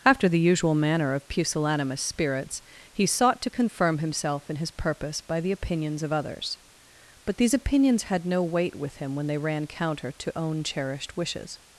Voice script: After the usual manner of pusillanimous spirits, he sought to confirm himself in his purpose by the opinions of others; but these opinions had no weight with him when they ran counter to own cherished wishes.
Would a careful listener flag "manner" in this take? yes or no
no